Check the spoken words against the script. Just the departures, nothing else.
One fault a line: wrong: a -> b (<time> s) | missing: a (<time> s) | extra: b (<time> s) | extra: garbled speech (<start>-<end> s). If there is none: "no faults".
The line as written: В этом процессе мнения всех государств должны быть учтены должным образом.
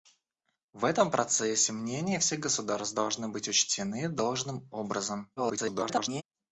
extra: garbled speech (5.4-6.2 s)